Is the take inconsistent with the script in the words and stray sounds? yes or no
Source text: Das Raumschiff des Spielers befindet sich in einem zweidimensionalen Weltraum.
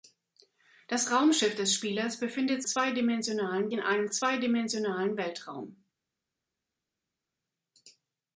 yes